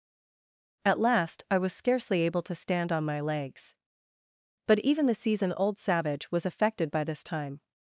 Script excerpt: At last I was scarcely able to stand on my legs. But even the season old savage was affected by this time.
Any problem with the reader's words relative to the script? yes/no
no